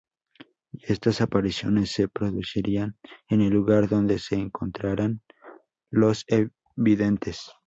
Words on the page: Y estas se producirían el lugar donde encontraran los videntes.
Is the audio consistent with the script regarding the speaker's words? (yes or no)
no